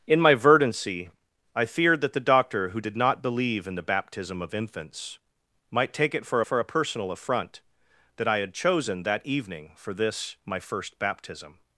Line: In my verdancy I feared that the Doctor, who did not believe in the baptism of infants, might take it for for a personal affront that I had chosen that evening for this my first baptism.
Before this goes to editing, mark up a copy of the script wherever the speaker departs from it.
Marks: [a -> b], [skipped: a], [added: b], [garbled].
In my verdancy I feared that the Doctor, who did not believe in the baptism of infants, might take it for for a personal affront that I had chosen that evening for this my first baptism.